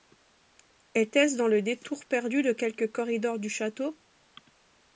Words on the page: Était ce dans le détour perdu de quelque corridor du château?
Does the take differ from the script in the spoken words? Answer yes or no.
no